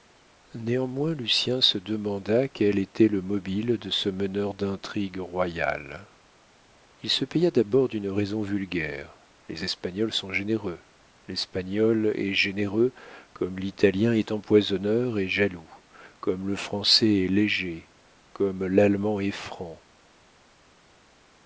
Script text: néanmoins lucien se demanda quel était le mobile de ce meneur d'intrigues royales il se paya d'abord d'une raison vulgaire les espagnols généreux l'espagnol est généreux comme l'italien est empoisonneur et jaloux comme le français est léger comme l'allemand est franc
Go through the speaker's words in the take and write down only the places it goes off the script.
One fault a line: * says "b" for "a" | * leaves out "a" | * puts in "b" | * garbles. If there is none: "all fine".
* puts in "sont"